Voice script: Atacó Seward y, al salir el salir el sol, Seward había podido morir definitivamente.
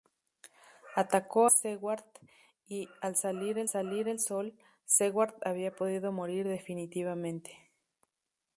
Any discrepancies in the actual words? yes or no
no